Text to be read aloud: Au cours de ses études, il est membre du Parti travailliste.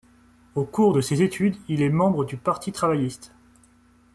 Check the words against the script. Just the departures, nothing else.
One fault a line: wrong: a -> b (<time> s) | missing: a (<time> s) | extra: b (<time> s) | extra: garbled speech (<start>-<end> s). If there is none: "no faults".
no faults